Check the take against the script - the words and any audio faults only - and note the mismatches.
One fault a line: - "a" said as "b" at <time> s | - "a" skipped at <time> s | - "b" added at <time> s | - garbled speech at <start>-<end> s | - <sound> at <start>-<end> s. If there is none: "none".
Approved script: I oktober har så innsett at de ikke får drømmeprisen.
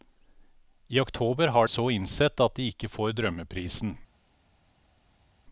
none